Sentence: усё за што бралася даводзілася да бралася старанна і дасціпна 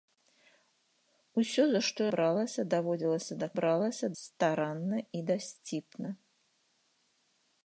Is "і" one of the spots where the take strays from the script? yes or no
no